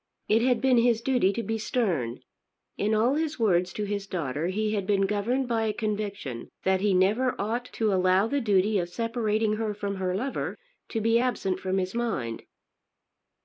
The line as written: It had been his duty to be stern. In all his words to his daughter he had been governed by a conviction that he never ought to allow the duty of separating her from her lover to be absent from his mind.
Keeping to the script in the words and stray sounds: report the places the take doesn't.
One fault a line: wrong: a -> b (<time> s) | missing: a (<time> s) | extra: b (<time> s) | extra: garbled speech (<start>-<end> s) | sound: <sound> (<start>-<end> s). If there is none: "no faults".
no faults